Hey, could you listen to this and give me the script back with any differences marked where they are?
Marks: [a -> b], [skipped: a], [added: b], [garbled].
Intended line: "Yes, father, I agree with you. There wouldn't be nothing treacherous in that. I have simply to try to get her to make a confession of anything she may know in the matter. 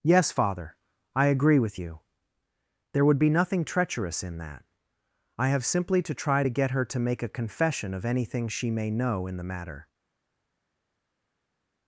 "Yes, father, I agree with you. There [wouldn't -> would] be nothing treacherous in that. I have simply to try to get her to make a confession of anything she may know in the matter.